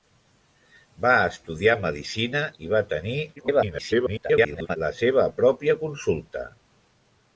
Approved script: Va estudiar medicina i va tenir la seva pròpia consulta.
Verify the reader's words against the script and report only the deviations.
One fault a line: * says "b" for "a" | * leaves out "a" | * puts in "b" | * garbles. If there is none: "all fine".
* garbles